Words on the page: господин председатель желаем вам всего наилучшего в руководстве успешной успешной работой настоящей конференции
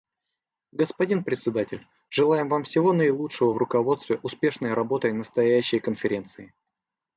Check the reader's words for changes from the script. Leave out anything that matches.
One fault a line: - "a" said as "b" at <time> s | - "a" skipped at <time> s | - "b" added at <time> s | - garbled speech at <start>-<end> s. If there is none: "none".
- "успешной" skipped at 4.7 s